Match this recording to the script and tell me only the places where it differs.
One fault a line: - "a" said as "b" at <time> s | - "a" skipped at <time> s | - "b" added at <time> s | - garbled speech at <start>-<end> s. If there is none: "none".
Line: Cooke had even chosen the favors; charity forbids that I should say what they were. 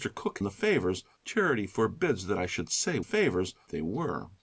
- "had even chosen" skipped at 0.4 s
- "what" said as "favors" at 3.0 s